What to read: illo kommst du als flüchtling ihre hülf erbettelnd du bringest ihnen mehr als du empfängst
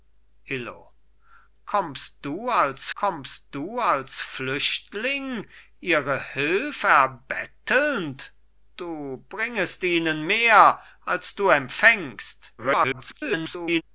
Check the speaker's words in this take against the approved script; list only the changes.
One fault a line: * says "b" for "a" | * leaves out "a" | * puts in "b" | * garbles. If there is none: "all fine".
* puts in "kommst du als"
* garbles